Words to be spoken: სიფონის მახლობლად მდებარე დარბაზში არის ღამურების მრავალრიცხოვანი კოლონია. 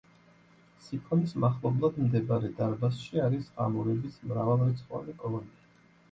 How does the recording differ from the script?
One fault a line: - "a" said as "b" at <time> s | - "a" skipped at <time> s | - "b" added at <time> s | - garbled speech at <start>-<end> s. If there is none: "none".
none